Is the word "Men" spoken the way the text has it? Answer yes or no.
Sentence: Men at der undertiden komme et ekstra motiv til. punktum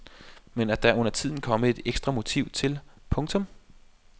yes